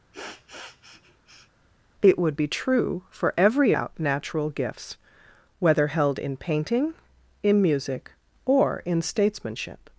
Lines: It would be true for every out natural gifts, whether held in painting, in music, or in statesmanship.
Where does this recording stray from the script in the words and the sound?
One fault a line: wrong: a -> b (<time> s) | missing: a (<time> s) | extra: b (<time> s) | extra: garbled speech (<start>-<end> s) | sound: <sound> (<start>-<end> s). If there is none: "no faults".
sound: sniff (0.1-1.5 s)